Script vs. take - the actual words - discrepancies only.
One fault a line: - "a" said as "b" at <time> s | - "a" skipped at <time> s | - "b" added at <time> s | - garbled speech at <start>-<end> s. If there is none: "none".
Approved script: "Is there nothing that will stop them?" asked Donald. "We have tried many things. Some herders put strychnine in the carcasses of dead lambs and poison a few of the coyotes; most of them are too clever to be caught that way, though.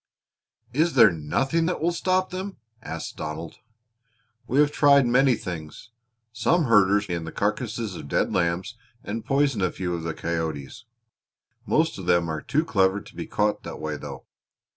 - "put strychnine" skipped at 7.1 s